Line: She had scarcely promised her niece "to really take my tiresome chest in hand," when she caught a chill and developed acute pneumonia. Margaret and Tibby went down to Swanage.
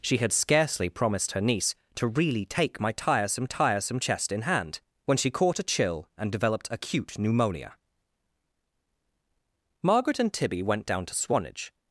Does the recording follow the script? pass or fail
fail